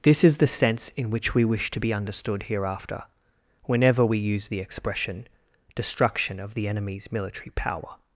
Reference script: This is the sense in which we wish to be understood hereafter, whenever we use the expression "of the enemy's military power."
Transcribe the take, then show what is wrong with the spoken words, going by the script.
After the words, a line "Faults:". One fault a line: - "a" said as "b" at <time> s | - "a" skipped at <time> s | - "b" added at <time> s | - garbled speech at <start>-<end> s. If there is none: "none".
This is the sense in which we wish to be understood hereafter, whenever we use the expression "destruction of the enemy's military power."
Faults:
- "destruction" added at 5.8 s